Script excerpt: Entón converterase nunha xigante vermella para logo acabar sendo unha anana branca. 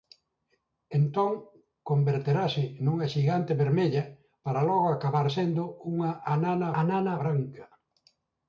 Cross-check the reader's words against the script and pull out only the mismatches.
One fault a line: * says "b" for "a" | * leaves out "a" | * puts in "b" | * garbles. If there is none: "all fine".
* puts in "anana"